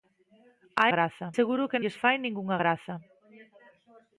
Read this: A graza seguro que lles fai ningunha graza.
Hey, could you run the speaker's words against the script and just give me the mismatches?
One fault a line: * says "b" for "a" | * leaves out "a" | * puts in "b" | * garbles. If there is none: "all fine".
all fine